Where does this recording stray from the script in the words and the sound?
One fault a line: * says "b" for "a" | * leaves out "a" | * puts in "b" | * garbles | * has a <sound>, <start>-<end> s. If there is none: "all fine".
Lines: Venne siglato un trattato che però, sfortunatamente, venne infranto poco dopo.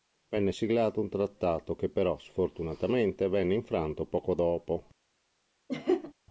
* has a laugh, 5.7-6.1 s